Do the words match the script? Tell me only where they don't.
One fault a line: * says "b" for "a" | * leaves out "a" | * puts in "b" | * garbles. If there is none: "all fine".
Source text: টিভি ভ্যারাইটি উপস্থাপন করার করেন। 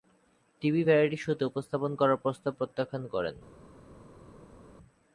* puts in "শোতে"
* puts in "প্রস্তাব প্রত্যাখ্যান"